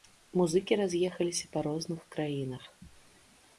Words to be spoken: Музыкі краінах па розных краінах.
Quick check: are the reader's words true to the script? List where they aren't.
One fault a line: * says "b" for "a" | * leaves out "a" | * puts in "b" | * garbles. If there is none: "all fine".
* says "раз'ехаліся" for "краінах"